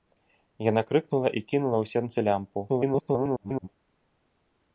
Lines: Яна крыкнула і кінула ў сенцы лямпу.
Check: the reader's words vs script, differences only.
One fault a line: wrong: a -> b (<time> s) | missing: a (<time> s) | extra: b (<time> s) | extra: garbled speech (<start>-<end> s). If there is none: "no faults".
extra: garbled speech (2.7-3.7 s)